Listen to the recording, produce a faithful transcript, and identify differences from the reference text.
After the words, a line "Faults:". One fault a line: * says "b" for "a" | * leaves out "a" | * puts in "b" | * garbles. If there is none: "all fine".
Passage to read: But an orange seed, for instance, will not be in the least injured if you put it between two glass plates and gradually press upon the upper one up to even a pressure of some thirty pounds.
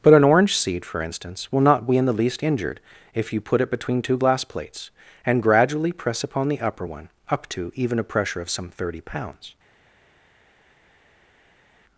But an orange seed, for instance, will not be in the least injured if you put it between two glass plates and gradually press upon the upper one up to even a pressure of some thirty pounds.
Faults:
all fine